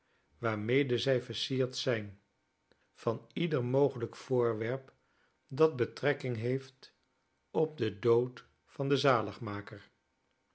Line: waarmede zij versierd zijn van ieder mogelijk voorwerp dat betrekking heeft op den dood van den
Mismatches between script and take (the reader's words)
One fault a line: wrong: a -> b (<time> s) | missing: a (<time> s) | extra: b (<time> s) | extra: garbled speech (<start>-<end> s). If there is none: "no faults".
no faults